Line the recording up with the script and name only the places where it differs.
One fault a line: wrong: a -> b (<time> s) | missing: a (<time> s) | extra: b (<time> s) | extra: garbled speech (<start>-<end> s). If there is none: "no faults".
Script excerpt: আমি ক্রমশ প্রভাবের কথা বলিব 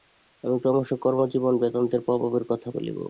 extra: কর্মজীবনে বেদান্তের (1.0 s)